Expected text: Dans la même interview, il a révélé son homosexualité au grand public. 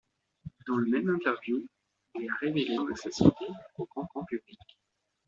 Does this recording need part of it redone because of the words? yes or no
yes